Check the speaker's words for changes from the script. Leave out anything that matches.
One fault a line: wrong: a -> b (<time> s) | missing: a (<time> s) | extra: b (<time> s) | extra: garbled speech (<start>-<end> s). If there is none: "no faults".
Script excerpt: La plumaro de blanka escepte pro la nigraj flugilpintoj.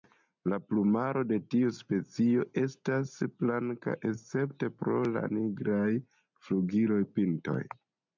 extra: tiu specio estas (1.5 s)